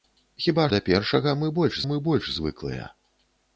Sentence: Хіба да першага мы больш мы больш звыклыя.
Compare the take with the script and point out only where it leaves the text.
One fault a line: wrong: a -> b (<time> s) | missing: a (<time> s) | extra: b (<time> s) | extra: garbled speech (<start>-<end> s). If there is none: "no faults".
no faults